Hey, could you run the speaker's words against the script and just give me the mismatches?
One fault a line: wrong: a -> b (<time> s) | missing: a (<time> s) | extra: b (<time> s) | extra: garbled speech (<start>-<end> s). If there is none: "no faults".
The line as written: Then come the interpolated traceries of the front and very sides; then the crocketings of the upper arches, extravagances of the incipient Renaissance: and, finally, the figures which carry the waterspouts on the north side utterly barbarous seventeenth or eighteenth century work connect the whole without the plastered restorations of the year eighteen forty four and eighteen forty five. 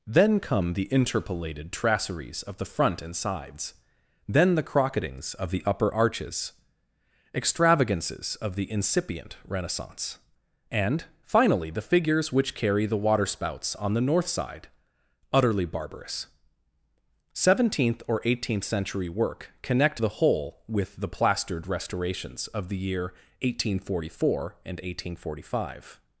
missing: very (3.1 s)
wrong: without -> with (20.7 s)